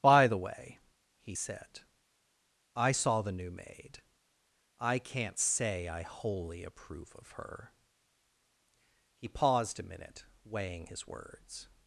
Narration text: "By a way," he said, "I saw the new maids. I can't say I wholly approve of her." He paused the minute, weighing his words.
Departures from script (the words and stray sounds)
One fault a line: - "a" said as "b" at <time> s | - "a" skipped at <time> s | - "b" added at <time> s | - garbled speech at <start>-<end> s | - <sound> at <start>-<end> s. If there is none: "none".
- "a" said as "the" at 0.2 s
- "maids" said as "maid" at 3.5 s
- "the" said as "a" at 9.8 s